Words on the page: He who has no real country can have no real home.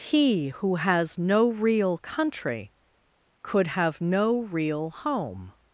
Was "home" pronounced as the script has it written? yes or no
yes